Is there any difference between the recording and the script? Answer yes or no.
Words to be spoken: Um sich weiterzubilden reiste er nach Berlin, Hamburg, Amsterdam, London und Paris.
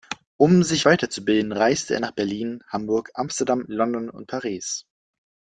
no